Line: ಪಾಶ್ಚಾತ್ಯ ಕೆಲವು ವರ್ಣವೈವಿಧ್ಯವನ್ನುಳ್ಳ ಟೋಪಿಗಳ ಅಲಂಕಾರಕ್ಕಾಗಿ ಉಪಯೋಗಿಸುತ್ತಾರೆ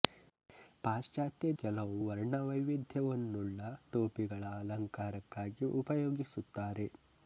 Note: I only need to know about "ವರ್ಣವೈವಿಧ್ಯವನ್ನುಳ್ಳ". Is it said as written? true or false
true